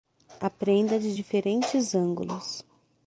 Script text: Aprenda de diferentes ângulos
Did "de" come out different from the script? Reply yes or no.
no